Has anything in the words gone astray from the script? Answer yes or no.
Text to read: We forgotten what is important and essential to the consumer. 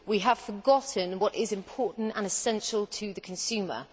yes